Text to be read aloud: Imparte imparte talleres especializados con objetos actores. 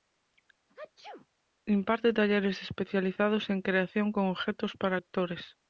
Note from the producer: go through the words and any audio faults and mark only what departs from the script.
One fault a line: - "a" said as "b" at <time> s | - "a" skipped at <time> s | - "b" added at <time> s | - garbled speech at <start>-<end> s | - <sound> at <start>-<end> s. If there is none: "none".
- sneeze at 0.7-1.3 s
- "imparte" skipped at 2.1 s
- "en creación" added at 3.5 s
- "para" added at 4.8 s